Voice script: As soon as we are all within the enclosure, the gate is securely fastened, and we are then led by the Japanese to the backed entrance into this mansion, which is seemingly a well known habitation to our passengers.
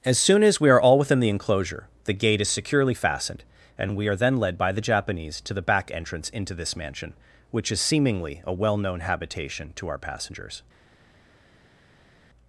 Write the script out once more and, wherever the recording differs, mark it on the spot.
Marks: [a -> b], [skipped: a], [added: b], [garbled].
As soon as we are all within the enclosure, the gate is securely fastened, and we are then led by the Japanese to the [backed -> back] entrance into this mansion, which is seemingly a well known habitation to our passengers.